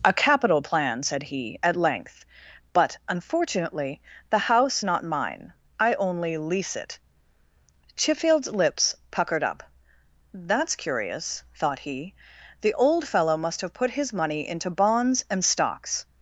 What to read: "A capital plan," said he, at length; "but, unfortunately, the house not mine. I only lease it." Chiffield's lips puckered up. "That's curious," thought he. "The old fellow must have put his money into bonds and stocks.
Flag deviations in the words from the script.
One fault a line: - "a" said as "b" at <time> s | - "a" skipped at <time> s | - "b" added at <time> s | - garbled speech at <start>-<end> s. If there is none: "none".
none